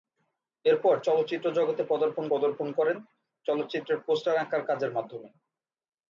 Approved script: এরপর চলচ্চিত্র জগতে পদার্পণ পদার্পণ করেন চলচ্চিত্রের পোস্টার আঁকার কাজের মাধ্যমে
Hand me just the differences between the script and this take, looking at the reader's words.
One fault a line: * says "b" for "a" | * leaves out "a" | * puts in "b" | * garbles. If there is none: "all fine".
all fine